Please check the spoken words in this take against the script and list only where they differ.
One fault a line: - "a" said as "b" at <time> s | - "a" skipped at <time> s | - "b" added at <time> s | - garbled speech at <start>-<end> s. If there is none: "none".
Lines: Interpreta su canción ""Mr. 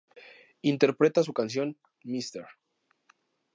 none